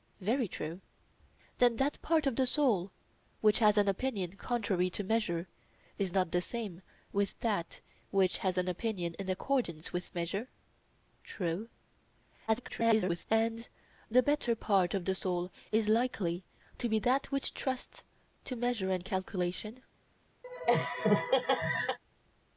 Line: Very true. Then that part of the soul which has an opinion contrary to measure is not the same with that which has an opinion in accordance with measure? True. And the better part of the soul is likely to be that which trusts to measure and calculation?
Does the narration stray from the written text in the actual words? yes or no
yes